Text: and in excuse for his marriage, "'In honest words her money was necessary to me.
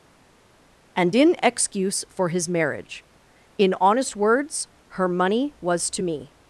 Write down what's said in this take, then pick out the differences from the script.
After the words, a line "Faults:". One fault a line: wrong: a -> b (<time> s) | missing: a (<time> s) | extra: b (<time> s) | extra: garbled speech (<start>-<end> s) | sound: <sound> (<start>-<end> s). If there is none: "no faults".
and in excuse for his marriage, "'In honest words her money was to me.
Faults:
missing: necessary (5.9 s)